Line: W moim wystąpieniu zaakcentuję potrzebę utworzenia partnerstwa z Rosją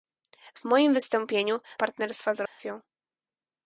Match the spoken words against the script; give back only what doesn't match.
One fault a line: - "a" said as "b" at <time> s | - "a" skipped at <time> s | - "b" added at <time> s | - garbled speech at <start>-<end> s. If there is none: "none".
- "zaakcentuję potrzebę utworzenia" skipped at 1.6 s